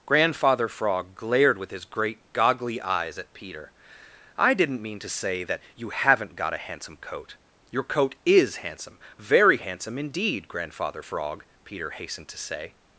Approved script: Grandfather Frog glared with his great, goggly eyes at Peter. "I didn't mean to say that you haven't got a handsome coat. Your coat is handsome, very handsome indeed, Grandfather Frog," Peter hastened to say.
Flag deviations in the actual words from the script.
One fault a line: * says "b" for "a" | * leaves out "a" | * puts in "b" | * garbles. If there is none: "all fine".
all fine